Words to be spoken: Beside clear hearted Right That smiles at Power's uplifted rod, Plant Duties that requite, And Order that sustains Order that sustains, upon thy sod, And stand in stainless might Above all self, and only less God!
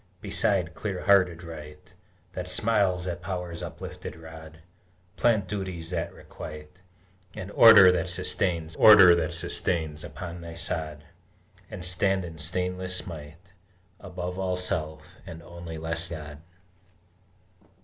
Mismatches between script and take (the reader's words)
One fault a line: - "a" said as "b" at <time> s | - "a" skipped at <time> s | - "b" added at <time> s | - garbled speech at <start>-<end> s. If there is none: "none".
none